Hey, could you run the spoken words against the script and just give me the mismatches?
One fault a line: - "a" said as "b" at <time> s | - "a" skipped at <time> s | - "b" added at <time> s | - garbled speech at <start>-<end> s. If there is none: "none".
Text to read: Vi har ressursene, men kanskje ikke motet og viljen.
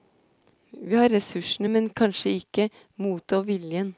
none